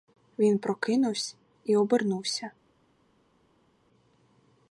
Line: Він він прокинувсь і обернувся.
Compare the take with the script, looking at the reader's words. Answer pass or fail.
fail